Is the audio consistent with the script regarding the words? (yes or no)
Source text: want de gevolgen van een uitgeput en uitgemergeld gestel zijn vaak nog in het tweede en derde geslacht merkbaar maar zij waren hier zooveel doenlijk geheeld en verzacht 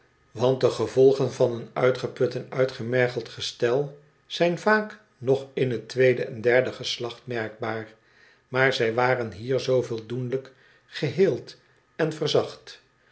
yes